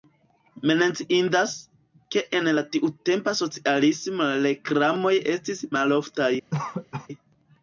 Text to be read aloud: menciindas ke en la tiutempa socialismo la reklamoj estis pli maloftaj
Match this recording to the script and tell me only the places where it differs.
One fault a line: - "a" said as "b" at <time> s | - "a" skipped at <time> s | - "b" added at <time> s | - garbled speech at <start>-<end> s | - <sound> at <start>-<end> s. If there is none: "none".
- "pli" skipped at 5.7 s
- cough at 6.5-7.1 s